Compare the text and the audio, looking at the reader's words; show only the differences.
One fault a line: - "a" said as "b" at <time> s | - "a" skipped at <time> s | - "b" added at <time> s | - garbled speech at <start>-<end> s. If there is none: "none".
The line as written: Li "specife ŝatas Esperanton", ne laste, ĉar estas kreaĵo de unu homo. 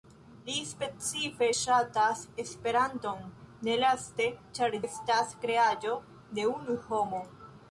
none